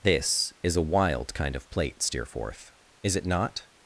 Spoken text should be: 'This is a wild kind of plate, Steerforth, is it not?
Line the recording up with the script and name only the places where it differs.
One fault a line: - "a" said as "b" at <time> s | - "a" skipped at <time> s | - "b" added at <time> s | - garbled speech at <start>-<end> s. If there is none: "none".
none